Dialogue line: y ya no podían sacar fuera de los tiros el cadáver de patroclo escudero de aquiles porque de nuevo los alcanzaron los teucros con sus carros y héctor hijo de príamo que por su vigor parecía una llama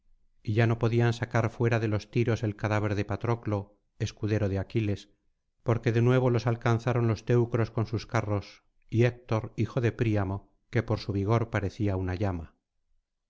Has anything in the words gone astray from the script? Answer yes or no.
no